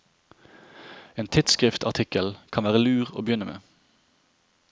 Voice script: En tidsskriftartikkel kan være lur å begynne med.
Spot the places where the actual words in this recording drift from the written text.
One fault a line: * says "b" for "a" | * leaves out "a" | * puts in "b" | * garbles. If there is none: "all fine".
all fine